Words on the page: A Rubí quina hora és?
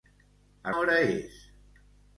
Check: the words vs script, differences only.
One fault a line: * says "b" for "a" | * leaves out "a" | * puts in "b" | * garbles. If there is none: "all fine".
* leaves out "Rubí quina"